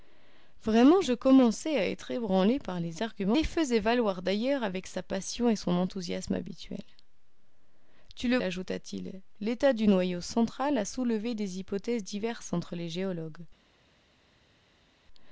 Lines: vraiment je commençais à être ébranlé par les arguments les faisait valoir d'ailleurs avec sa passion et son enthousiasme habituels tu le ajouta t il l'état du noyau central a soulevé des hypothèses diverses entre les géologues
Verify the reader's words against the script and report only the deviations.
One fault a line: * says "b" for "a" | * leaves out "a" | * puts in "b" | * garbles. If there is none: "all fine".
all fine